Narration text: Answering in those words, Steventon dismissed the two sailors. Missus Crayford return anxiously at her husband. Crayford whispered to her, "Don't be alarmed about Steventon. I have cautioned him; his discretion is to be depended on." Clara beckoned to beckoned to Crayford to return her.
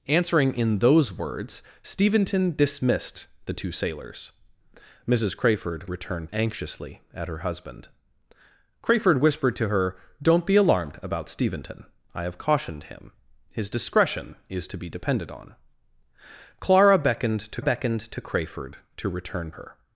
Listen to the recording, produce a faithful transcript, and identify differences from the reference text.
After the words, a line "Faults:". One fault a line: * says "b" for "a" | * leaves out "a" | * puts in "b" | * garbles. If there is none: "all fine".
Answering in those words, Steventon dismissed the two sailors. Missus Crayford return anxiously at her husband. Crayford whispered to her, "Don't be alarmed about Steventon. I have cautioned him; his discretion is to be depended on." Clara beckoned to beckoned to Crayford to return her.
Faults:
all fine